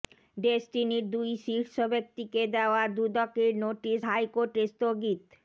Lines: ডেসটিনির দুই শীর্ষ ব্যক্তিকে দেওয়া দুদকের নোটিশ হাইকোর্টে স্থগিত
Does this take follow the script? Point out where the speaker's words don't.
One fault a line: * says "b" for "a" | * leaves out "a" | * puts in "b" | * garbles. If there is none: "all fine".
all fine